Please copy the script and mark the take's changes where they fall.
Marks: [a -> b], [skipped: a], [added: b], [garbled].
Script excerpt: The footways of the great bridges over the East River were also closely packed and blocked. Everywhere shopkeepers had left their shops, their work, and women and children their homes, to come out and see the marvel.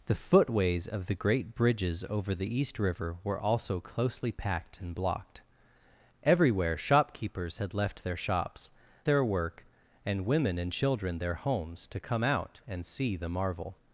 The footways of the great bridges over the East River were also closely packed and blocked. Everywhere shopkeepers had left their shops, their work, and women and children their homes, to come out and see the marvel.